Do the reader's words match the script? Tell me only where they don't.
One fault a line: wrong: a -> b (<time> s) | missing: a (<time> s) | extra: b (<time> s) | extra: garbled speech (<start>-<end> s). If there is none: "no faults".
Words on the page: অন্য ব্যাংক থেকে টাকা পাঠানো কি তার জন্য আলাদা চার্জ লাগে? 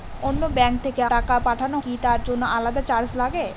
no faults